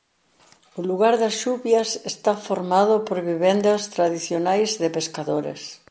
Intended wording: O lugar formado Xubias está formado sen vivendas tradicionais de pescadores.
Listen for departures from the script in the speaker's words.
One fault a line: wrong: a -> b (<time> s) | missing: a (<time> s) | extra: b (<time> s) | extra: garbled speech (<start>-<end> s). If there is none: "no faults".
wrong: formado -> das (1.2 s)
wrong: sen -> por (3.1 s)